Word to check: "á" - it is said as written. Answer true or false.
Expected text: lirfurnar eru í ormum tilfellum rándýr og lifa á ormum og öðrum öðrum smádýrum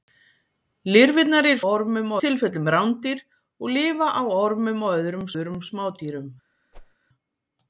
true